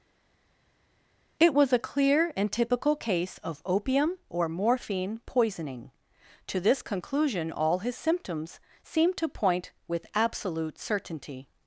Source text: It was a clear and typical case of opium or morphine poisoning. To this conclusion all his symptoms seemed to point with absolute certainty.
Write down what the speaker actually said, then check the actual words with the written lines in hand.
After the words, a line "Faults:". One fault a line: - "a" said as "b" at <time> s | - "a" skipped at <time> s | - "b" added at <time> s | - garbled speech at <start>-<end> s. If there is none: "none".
It was a clear and typical case of opium or morphine poisoning. To this conclusion all his symptoms seemed to point with absolute certainty.
Faults:
none